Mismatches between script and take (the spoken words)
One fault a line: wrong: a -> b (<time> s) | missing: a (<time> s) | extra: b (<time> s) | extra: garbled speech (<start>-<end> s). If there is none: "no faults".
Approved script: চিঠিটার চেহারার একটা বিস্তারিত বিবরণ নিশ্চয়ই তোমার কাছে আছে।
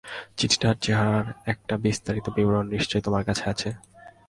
no faults